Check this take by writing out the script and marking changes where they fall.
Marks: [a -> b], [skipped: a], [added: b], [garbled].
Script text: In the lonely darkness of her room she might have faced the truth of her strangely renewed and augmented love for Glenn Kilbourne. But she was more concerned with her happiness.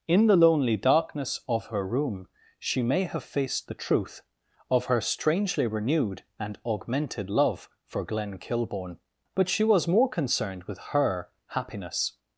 In the lonely darkness of her room she [might -> may] have faced the truth of her strangely renewed and augmented love for Glenn Kilbourne. But she was more concerned with her happiness.